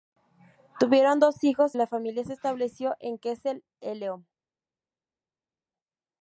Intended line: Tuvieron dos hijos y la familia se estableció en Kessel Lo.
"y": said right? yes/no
no